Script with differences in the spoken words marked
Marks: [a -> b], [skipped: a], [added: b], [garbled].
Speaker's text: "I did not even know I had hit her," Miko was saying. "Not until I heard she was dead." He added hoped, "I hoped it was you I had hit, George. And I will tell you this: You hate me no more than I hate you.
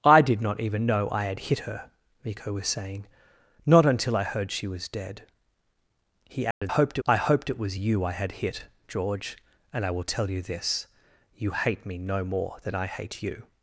"I did not even know I had hit her," Miko was saying. "Not until I heard she was dead." He added hoped, "I hoped it was you I had hit, George. And I will tell you this: You hate me no more than I hate you.